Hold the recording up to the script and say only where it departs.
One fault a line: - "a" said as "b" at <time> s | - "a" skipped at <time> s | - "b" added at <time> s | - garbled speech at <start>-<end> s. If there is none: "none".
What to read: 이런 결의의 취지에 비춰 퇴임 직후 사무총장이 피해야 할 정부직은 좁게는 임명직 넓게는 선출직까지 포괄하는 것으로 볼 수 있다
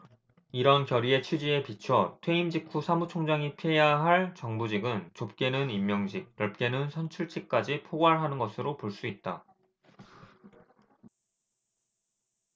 none